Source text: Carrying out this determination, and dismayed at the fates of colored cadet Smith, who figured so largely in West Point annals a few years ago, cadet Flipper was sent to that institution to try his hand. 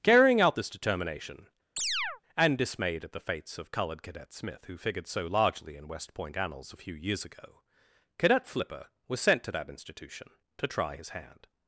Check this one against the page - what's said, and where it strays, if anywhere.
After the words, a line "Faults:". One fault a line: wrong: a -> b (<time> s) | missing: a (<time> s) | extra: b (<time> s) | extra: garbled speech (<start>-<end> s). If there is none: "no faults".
Carrying out this determination, and dismayed at the fates of colored cadet Smith, who figured so largely in West Point annals a few years ago, cadet Flipper was sent to that institution to try his hand.
Faults:
no faults